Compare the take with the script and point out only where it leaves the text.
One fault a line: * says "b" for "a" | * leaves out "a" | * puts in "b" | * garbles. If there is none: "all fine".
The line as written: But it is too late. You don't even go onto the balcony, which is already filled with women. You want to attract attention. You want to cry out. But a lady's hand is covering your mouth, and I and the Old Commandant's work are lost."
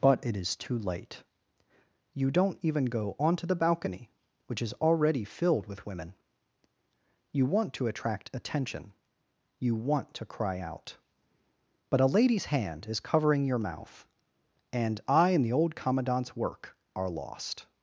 all fine